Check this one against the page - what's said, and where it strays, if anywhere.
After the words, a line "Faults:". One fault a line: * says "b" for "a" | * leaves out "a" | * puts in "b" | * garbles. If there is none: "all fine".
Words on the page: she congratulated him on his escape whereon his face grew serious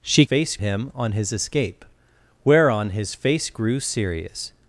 she face him on his escape whereon his face grew serious
Faults:
* says "face" for "congratulated"